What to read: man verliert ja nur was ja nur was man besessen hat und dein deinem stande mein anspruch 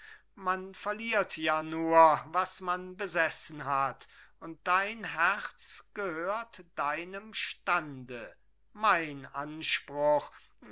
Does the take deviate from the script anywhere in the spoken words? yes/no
yes